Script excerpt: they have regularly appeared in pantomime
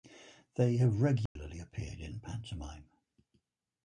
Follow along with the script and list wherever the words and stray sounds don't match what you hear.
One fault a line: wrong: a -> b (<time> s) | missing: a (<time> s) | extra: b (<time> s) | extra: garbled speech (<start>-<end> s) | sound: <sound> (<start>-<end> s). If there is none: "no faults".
sound: dropout (1.3-1.4 s)